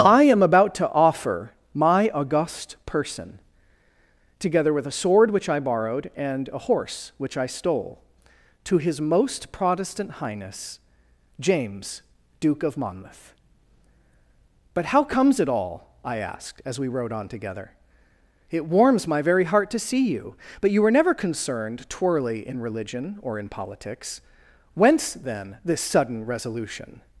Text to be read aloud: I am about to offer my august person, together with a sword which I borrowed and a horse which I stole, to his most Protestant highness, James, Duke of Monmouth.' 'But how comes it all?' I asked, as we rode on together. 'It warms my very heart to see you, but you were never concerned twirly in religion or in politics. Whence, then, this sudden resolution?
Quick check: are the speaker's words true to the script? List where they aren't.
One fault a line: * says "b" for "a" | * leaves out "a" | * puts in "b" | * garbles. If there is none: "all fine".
all fine